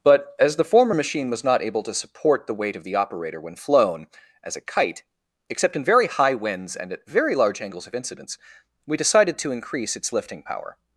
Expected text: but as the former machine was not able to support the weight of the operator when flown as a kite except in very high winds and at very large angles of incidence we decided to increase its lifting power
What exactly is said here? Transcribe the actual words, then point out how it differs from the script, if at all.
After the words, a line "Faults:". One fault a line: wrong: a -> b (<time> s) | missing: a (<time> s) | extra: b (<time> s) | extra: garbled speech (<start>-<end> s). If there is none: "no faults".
but as the former machine was not able to support the weight of the operator when flown as a kite except in very high winds and at very large angles of incidence we decided to increase its lifting power
Faults:
no faults